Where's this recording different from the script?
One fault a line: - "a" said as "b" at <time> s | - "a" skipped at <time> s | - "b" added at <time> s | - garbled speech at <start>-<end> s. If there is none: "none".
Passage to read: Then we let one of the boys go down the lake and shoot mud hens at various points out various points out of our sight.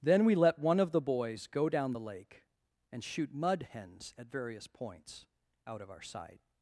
- "various points out" skipped at 5.8 s